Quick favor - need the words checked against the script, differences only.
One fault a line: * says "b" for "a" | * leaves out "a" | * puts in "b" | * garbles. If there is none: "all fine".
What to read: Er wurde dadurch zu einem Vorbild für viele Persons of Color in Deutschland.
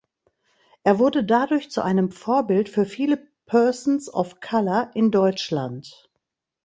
all fine